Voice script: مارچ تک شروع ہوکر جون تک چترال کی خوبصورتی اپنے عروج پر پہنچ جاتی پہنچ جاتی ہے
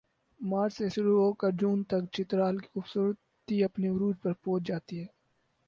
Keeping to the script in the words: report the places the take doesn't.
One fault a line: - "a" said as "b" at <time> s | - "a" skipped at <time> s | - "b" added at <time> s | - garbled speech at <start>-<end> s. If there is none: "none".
- "تک" said as "سے" at 0.7 s
- "پہنچ جاتی" skipped at 5.0 s